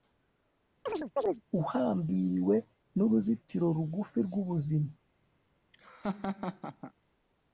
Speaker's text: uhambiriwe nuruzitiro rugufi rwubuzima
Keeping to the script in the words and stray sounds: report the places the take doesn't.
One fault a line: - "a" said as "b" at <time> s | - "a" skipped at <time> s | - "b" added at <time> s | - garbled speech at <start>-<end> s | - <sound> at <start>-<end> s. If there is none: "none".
- chirp at 0.9-1.4 s
- laugh at 5.7-6.9 s